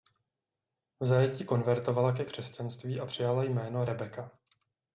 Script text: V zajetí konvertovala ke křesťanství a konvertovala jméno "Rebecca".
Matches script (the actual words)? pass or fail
fail